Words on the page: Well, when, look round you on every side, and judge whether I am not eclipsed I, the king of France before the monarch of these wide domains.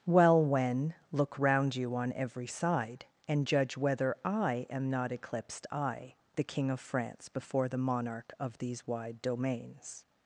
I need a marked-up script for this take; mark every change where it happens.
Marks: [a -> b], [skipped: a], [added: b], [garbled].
Well, when, look round you on every side, and judge whether I am not eclipsed I, the king of France before the monarch of these wide domains.